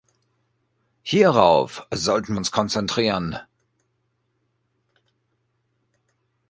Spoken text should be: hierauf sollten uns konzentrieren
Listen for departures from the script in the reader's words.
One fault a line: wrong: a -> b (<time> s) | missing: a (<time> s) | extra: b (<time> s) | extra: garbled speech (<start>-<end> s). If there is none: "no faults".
no faults